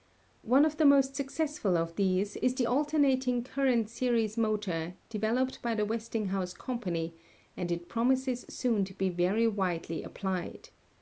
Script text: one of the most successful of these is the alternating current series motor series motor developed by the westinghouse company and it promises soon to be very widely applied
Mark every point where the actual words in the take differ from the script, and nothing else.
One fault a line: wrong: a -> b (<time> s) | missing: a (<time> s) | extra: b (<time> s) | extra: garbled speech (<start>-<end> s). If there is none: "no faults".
missing: series motor (4.9 s)